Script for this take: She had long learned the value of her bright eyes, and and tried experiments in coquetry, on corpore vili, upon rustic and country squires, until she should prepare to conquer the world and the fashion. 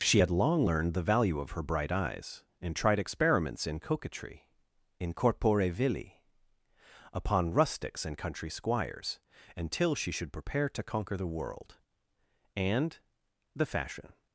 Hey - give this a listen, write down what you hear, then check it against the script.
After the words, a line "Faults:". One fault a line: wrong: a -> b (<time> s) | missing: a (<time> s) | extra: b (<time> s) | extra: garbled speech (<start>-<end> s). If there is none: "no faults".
She had long learned the value of her bright eyes, and tried experiments in coquetry, in corpore vili, upon rustics and country squires, until she should prepare to conquer the world and the fashion.
Faults:
missing: and (2.8 s)
wrong: on -> in (5.0 s)
wrong: rustic -> rustics (7.5 s)